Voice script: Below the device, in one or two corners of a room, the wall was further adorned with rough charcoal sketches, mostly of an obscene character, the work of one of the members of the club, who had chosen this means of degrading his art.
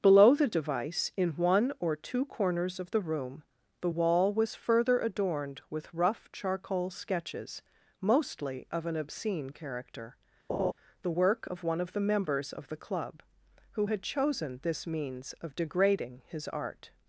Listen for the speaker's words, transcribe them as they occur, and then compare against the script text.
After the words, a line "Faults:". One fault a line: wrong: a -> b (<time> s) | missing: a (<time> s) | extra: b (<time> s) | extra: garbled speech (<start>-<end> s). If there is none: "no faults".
Below the device, in one or two corners of the room, the wall was further adorned with rough charcoal sketches, mostly of an obscene character, the work of one of the members of the club, who had chosen this means of degrading his art.
Faults:
wrong: a -> the (2.9 s)